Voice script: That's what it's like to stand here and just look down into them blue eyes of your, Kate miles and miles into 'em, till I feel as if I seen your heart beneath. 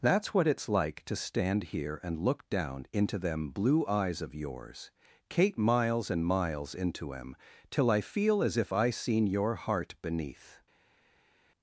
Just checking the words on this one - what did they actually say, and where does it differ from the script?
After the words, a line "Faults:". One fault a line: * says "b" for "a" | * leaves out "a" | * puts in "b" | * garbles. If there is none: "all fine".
That's what it's like to stand here and look down into them blue eyes of yours, Kate miles and miles into 'em, till I feel as if I seen your heart beneath.
Faults:
* leaves out "just"
* says "yours" for "your"